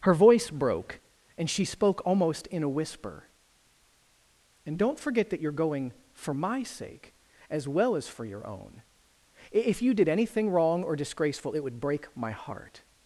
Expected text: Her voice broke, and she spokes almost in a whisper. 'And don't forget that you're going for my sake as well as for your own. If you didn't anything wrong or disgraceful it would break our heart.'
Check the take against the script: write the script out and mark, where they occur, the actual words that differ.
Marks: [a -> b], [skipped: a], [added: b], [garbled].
Her voice broke, and she [spokes -> spoke] almost in a whisper. 'And don't forget that you're going for my sake as well as for your own. If you [didn't -> did] anything wrong or disgraceful it would break [our -> my] heart.'